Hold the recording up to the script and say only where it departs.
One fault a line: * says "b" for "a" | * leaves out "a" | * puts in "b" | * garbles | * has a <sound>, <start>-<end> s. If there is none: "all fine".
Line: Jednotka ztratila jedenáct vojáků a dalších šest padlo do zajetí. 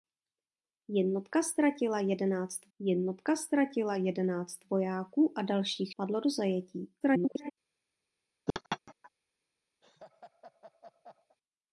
* puts in "jednotka ztratila jedenáct"
* leaves out "šest"
* garbles
* has a laugh, 8.5-9.1 s
* has a laugh, 9.8-11.4 s